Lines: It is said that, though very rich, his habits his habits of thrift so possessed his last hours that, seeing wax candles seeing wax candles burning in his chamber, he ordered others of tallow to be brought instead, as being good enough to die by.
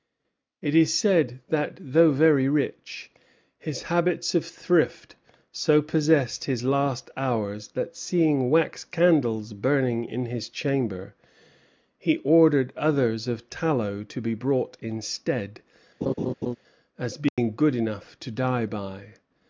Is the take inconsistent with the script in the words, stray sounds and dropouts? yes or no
yes